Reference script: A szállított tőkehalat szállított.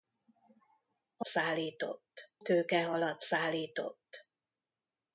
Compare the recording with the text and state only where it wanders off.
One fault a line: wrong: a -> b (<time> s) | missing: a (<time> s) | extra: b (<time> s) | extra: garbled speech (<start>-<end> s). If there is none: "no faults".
no faults